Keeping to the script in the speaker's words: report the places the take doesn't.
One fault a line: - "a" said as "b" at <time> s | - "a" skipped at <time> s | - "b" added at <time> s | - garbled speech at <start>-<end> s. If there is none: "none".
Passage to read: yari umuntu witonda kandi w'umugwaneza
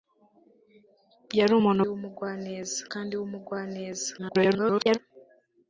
- "witonda" said as "w'umugwaneza" at 1.9 s
- garbled speech at 4.2-5.0 s